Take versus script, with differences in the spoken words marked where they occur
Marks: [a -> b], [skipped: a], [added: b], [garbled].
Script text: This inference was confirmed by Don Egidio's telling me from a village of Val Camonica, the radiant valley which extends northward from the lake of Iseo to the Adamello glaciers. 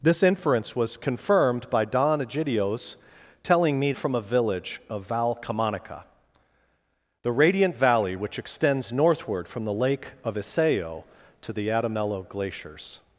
This inference was confirmed by Don Egidio's telling me from a village of Val Camonica, the radiant valley which extends northward from the lake of Iseo to the Adamello glaciers.